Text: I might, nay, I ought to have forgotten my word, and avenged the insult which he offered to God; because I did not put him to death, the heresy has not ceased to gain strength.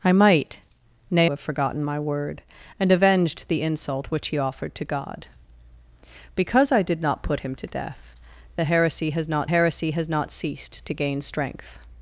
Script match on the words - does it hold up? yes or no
no